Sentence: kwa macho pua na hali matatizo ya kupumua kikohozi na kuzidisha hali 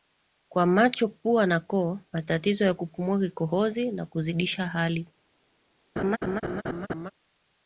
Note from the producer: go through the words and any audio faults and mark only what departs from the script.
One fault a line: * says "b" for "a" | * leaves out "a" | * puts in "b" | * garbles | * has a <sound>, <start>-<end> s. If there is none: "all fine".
* says "koo" for "hali"
* has a laugh, 6.0-7.1 s